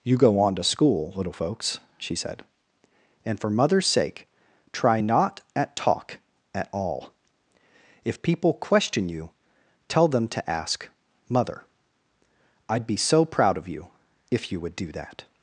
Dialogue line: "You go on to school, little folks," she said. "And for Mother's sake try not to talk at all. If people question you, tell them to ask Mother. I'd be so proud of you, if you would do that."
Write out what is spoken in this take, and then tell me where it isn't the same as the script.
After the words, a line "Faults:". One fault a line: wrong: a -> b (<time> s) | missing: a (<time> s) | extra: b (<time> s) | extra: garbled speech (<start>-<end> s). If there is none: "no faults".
"You go on to school, little folks," she said. "And for Mother's sake try not at talk at all. If people question you, tell them to ask Mother. I'd be so proud of you, if you would do that."
Faults:
wrong: to -> at (5.5 s)